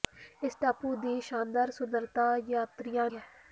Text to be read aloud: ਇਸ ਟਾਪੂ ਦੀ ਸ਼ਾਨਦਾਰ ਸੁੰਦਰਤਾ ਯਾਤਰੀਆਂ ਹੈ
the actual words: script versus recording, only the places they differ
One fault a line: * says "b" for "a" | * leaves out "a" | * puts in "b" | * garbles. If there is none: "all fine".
all fine